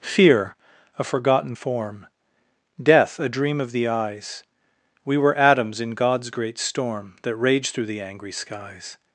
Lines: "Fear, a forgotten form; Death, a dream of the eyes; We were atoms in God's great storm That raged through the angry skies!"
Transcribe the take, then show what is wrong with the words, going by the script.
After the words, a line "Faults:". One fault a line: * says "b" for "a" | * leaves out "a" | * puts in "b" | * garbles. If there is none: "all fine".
"Fear, a forgotten form; Death, a dream of the eyes; We were atoms in God's great storm That raged through the angry skies!"
Faults:
all fine